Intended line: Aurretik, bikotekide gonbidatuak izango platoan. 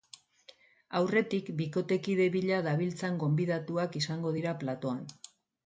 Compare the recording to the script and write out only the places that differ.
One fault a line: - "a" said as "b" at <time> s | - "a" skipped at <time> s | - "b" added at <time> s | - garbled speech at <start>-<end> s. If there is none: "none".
- "bila dabiltzan" added at 2.4 s
- "dira" added at 4.4 s